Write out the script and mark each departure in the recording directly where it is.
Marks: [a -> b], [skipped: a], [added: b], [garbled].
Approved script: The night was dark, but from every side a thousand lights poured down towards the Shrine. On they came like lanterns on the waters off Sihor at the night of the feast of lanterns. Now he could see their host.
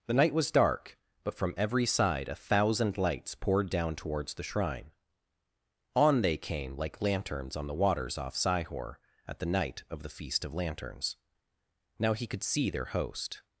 The night was dark, but from every side a thousand lights poured down towards the Shrine. On they came like lanterns on the waters off Sihor at the night of the feast of lanterns. Now he could see their host.